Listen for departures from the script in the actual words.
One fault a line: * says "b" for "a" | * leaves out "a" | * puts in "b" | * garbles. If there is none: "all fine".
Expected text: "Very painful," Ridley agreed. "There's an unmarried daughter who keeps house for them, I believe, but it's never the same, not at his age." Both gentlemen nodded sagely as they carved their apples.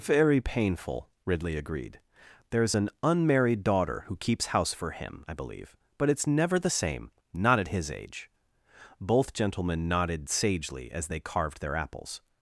* says "him" for "them"